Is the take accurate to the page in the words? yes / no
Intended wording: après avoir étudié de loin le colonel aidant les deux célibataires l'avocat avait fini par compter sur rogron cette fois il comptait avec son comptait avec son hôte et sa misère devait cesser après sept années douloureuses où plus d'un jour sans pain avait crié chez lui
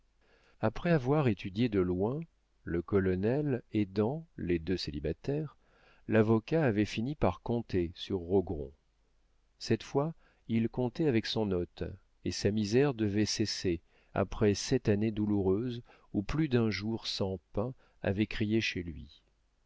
no